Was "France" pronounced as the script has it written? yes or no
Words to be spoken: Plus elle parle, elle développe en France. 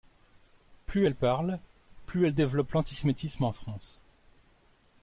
yes